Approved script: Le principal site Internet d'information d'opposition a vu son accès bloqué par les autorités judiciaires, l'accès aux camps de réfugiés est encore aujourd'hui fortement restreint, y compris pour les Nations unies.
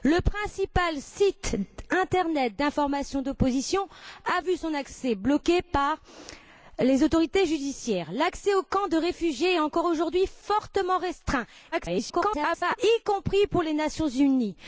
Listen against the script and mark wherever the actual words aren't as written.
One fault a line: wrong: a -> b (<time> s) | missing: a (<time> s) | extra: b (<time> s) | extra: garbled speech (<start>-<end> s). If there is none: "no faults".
extra: garbled speech (11.7-12.8 s)